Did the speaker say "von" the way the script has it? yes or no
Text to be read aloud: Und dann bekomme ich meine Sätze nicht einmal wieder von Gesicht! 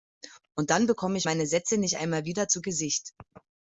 no